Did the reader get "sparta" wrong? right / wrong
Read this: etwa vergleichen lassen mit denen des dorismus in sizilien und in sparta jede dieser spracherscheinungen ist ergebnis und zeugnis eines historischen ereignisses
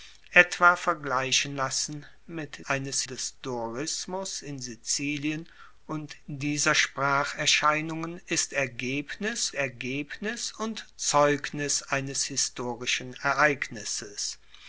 wrong